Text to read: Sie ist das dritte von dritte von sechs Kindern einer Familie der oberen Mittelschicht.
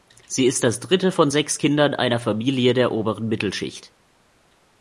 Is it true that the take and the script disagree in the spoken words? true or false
true